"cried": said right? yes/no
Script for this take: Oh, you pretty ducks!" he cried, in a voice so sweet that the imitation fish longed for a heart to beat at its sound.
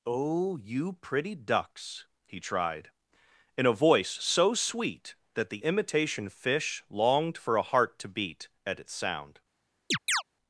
no